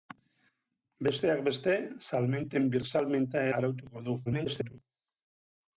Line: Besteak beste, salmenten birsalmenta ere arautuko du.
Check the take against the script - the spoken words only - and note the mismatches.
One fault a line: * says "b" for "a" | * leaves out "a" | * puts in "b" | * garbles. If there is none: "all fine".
* leaves out "ere"
* garbles